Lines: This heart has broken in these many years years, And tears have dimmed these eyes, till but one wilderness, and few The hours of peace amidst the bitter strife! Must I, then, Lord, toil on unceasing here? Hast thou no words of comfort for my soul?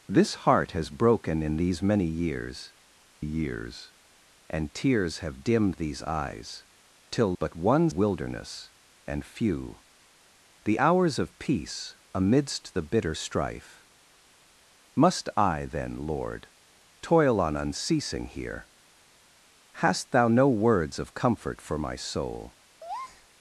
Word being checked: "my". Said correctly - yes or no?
yes